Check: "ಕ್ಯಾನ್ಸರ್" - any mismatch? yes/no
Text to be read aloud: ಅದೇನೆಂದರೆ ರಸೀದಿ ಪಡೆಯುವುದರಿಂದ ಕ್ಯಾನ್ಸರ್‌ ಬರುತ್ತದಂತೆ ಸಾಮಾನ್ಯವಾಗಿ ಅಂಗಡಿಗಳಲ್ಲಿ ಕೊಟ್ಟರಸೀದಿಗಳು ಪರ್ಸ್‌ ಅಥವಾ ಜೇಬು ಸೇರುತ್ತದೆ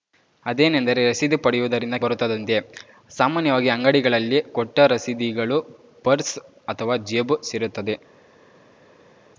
yes